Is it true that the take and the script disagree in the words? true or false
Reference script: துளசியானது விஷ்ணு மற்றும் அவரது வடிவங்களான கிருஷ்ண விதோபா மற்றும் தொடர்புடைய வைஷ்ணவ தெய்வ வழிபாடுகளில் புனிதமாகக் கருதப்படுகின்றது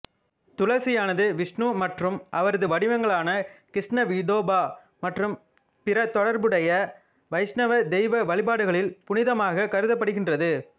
true